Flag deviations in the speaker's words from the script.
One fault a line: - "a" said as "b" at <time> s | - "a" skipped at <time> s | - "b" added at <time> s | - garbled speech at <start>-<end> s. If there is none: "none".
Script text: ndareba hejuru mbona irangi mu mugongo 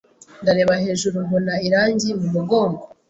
none